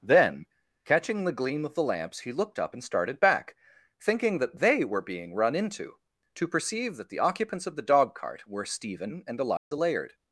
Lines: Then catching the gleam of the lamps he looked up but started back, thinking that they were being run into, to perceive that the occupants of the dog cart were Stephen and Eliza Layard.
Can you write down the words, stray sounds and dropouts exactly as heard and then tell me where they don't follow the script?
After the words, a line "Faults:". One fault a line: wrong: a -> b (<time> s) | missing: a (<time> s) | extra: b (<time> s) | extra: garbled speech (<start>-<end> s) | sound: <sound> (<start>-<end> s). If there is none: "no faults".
Then catching the gleam of the lamps he looked up and started back, thinking that they were being run into, to perceive that the occupants of the dog cart were Stephen and Eliza Layard.
Faults:
wrong: but -> and (2.7 s)
sound: dropout (9.6-9.7 s)